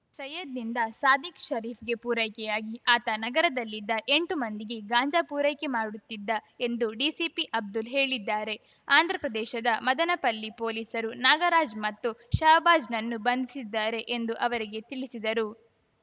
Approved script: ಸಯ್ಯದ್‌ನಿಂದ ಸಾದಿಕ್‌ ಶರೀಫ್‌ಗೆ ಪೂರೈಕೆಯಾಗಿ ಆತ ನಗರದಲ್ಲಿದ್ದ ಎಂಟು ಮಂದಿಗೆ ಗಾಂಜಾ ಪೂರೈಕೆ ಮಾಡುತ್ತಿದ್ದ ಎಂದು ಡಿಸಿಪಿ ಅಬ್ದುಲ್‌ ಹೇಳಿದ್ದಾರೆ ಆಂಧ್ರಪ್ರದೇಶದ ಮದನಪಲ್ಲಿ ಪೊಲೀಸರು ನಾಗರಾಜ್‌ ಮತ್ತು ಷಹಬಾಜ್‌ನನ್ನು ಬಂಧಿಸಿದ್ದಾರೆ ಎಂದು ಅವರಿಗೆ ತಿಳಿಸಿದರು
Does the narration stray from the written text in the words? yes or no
no